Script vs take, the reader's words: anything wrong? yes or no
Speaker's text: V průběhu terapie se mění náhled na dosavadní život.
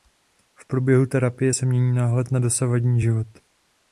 no